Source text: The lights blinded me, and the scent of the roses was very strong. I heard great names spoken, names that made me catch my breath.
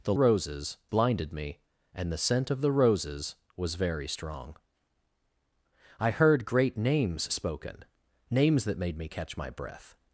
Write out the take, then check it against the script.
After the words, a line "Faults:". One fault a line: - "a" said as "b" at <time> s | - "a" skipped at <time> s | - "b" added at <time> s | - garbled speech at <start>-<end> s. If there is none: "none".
The roses blinded me, and the scent of the roses was very strong. I heard great names spoken, names that made me catch my breath.
Faults:
- "lights" said as "roses" at 0.1 s